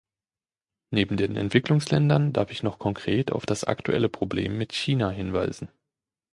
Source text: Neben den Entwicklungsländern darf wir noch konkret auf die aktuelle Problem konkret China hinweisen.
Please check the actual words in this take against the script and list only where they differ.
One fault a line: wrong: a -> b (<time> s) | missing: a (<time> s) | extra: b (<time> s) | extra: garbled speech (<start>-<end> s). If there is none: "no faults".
wrong: wir -> ich (2.5 s)
wrong: die -> das (3.5 s)
wrong: konkret -> mit (4.6 s)